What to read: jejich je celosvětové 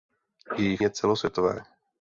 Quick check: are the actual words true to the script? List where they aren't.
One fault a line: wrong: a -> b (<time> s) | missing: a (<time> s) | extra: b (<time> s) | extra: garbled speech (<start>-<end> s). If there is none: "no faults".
no faults